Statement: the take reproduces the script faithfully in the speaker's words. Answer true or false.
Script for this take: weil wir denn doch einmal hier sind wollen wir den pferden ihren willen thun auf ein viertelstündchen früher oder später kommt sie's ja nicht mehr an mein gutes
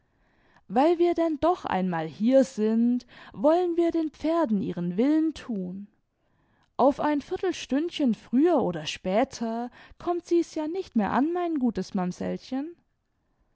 true